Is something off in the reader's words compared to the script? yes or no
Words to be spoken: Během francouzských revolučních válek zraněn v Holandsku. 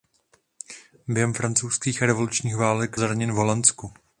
no